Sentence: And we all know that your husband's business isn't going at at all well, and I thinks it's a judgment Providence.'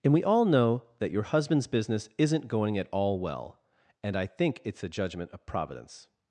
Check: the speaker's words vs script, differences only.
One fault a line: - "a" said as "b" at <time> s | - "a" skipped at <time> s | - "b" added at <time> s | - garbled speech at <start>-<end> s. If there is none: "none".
- "at" skipped at 2.9 s
- "thinks" said as "think" at 4.2 s
- "of" added at 5.3 s